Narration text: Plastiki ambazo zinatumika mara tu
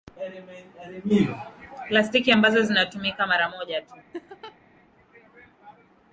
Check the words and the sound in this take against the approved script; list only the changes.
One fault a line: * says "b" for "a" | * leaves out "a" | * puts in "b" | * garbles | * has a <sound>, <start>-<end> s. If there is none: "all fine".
* puts in "moja"
* has a laugh, 4.1-4.6 s